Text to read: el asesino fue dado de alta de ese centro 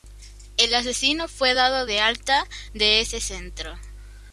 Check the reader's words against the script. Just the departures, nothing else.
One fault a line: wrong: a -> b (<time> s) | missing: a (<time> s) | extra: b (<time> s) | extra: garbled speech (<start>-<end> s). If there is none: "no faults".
no faults